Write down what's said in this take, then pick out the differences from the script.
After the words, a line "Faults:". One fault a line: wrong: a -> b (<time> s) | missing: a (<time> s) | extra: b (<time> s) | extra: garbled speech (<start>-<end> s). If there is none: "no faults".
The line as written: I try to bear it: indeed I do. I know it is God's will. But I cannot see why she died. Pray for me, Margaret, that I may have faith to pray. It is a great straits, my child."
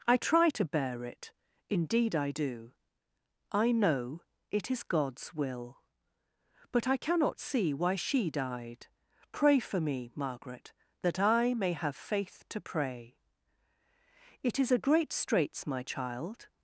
I try to bear it: indeed I do. I know it is God's will. But I cannot see why she died. Pray for me, Margaret, that I may have faith to pray. It is a great straits, my child."
Faults:
no faults